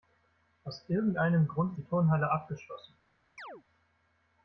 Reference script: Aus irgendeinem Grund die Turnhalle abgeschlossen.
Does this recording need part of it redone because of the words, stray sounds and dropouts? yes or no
yes